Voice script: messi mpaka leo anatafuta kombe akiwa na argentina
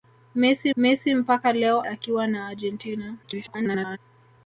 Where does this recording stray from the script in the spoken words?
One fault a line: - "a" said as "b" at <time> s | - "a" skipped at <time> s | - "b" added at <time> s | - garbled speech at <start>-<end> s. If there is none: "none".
- "messi" added at 0.8 s
- "anatafuta kombe" skipped at 1.8 s
- garbled speech at 3.2-4.0 s